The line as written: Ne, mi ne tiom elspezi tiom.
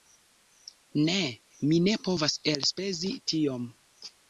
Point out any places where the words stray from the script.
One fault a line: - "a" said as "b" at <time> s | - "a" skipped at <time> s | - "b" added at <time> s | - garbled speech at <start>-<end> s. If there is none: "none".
- "tiom" said as "povas" at 2.1 s